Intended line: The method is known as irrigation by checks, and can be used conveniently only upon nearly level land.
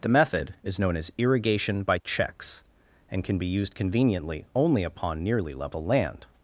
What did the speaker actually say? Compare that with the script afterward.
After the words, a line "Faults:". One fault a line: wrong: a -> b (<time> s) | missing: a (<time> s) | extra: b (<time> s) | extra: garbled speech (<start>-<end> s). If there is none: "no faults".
The method is known as irrigation by checks, and can be used conveniently only upon nearly level land.
Faults:
no faults